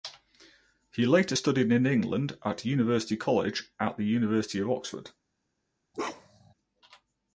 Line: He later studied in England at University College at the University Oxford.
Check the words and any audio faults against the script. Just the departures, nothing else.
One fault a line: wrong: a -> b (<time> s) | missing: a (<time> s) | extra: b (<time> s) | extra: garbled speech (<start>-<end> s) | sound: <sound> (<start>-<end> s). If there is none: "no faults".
extra: of (4.6 s)
sound: bark (5.9-6.5 s)